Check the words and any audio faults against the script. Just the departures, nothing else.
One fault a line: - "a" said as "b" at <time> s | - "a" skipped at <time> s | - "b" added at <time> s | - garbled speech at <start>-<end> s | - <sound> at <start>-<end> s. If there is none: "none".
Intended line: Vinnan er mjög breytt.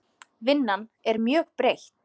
none